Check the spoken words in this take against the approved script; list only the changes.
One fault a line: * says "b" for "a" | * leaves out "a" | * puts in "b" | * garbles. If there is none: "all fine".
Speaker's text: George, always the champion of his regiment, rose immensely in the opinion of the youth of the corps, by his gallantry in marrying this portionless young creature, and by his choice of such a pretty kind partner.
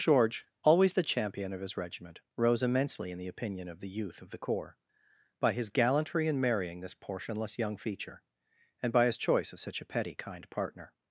* says "feature" for "creature"
* says "petty" for "pretty"